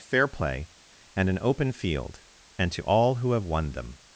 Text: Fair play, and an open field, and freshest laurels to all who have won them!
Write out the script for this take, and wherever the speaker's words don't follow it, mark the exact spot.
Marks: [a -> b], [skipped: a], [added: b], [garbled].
Fair play, and an open field, and [skipped: freshest laurels] to all who have won them!